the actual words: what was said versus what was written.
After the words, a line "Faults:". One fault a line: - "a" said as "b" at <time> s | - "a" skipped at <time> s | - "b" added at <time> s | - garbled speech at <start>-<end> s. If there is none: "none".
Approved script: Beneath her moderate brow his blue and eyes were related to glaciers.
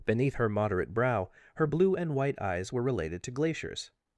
Beneath her moderate brow her blue and white eyes were related to glaciers.
Faults:
- "his" said as "her" at 1.5 s
- "white" added at 2.1 s